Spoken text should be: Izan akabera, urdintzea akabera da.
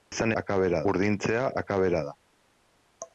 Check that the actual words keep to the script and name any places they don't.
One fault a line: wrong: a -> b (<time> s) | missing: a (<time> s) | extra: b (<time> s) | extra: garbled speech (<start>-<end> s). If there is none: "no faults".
no faults